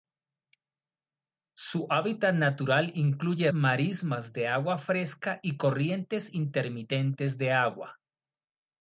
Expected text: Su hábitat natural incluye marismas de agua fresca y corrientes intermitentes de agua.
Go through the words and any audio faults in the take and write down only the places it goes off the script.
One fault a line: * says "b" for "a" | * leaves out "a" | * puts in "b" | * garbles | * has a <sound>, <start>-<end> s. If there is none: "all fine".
all fine